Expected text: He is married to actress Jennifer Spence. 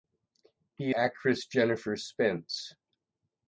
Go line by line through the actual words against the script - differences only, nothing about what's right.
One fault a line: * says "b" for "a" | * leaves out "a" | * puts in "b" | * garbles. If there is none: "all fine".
* leaves out "is married to"